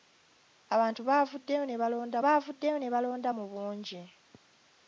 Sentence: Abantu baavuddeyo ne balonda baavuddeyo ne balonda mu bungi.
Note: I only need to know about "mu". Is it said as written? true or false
true